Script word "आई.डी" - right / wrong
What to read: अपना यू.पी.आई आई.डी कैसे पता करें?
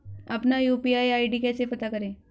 right